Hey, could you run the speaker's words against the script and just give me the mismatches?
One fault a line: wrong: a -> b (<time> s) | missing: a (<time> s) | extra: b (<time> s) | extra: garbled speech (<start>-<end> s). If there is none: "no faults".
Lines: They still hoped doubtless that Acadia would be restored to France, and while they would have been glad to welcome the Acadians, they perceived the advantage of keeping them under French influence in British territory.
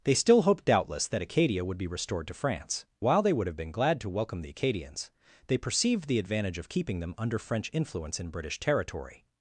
missing: and (2.9 s)